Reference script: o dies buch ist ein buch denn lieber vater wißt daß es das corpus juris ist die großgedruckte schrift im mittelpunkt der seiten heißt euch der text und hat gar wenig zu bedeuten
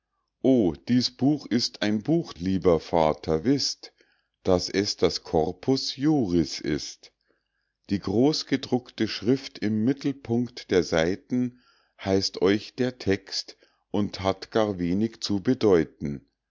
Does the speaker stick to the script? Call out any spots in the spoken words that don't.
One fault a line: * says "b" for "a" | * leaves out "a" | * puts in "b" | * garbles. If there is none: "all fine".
* leaves out "denn"